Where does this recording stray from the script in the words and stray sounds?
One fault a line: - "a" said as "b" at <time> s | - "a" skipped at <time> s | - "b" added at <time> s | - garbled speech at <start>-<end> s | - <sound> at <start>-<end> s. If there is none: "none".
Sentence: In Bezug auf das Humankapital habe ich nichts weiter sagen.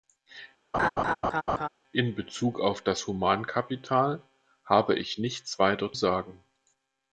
- laugh at 0.7-1.7 s